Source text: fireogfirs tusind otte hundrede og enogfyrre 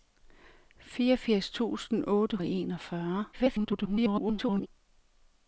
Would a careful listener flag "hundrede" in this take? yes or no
yes